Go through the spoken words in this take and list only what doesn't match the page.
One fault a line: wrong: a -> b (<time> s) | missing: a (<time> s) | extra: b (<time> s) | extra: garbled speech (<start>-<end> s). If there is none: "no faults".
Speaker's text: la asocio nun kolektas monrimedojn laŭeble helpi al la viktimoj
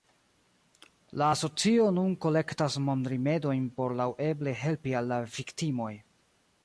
extra: por (3.8 s)